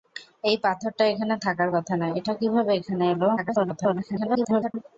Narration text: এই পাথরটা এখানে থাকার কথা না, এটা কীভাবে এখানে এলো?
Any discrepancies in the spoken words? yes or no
yes